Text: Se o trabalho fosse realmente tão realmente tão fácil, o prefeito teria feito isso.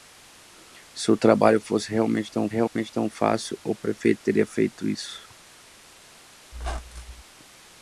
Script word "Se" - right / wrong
right